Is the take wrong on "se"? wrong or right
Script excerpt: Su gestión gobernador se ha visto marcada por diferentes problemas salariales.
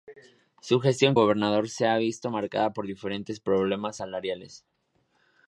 right